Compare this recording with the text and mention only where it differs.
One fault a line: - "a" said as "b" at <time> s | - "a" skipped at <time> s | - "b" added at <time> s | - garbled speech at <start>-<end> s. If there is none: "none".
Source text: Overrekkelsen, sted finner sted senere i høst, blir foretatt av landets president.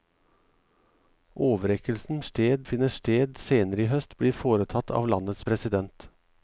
none